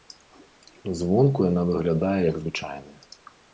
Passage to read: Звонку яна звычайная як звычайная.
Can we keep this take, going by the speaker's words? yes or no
no